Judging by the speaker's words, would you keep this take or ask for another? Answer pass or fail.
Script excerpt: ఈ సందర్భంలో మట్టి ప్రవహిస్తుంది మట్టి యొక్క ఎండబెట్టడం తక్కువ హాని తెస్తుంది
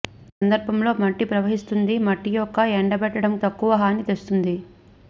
pass